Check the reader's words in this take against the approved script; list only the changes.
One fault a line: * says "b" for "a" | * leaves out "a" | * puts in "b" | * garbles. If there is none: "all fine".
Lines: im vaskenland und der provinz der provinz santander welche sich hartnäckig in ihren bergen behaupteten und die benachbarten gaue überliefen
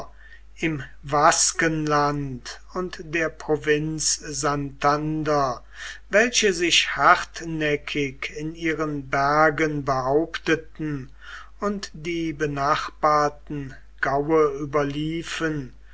* leaves out "der provinz"